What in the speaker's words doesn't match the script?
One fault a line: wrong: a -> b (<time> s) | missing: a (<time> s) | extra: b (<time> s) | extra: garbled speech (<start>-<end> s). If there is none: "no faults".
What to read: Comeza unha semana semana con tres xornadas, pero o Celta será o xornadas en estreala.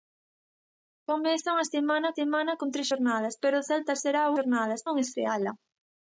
no faults